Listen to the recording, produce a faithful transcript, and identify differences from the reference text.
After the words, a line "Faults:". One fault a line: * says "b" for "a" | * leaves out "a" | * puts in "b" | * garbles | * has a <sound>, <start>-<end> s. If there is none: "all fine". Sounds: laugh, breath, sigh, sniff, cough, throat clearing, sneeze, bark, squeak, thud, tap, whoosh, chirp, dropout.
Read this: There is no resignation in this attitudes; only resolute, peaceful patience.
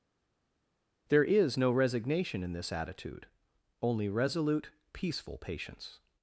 There is no resignation in this attitude; only resolute, peaceful patience.
Faults:
* says "attitude" for "attitudes"